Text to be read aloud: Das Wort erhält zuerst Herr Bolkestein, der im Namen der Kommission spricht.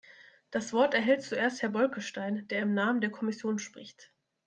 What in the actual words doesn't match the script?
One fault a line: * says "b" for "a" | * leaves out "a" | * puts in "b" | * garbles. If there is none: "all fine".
all fine